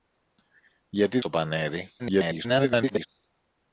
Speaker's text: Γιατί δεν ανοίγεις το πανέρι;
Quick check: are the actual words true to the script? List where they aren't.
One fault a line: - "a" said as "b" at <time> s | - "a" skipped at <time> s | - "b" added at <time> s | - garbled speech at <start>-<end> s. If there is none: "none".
- "δεν ανοίγεις" skipped at 1.2 s
- garbled speech at 2.0-3.1 s